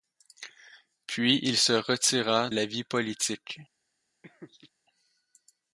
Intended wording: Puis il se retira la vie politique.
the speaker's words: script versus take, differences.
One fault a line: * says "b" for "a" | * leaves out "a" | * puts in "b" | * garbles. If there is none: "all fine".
all fine